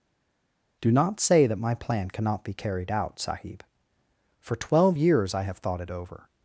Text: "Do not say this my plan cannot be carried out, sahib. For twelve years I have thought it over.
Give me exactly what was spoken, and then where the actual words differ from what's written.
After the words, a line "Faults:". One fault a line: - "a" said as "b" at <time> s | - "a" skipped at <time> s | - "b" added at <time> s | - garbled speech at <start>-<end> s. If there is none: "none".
"Do not say that my plan cannot be carried out, sahib. For twelve years I have thought it over.
Faults:
- "this" said as "that" at 1.5 s